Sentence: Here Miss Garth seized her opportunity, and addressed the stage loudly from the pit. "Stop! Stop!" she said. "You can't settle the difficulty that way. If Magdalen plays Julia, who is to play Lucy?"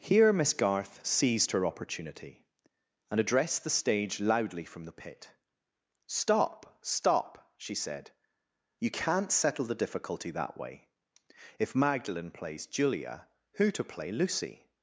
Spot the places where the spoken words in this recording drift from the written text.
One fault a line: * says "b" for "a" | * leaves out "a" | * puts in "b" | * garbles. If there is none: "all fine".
* leaves out "is"